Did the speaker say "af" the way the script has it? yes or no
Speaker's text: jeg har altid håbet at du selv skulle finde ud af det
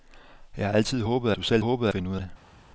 no